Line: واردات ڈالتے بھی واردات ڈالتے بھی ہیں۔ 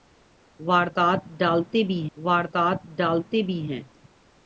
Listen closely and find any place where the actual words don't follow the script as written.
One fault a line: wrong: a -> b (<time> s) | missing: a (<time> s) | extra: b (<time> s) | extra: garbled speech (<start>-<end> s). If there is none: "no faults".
no faults